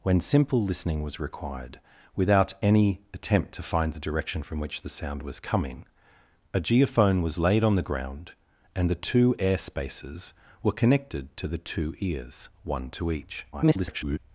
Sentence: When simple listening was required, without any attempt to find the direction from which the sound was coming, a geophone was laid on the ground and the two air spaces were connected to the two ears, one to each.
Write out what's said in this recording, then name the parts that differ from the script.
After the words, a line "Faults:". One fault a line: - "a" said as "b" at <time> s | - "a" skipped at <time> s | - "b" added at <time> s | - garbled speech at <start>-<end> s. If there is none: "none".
When simple listening was required, without any attempt to find the direction from which the sound was coming, a geophone was laid on the ground and the two air spaces were connected to the two ears, one to each. [garbled]
Faults:
- garbled speech at 13.5-14.2 s